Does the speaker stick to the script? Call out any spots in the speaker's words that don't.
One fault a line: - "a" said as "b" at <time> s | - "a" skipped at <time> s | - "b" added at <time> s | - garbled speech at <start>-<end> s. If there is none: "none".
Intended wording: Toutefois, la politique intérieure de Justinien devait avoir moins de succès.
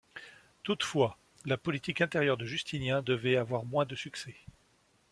none